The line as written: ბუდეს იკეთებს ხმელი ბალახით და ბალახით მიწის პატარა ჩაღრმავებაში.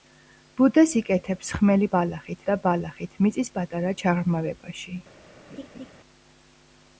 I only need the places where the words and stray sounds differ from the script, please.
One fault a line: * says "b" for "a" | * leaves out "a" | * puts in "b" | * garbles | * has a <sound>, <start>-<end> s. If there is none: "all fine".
* has a laugh, 5.5-5.9 s